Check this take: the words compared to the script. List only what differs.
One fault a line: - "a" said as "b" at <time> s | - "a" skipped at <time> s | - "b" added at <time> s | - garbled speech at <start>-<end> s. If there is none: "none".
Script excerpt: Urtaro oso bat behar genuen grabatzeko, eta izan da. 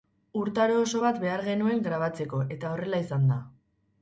- "horrela" added at 2.8 s